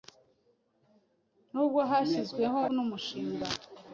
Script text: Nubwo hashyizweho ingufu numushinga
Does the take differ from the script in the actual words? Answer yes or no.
yes